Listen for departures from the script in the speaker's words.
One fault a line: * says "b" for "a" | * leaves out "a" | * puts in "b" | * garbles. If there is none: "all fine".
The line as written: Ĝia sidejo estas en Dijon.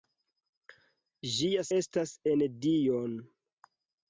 * leaves out "sidejo"